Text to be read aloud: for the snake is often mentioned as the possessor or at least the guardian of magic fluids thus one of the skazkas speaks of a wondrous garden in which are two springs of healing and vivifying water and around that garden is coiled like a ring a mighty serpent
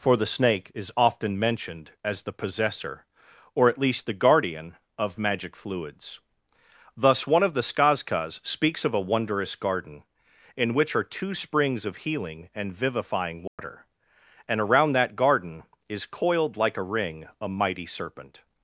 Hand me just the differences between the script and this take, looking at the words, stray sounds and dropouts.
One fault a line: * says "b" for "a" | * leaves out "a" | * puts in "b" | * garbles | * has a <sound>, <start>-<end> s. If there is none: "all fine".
* has a dropout, 13.5-13.6 s